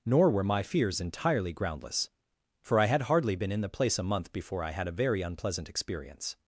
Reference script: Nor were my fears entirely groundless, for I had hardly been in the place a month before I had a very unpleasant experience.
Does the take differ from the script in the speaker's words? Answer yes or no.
no